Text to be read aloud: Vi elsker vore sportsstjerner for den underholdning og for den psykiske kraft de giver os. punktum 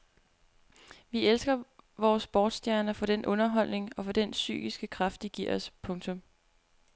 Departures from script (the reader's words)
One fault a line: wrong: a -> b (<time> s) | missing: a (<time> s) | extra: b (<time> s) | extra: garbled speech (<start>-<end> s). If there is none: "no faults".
no faults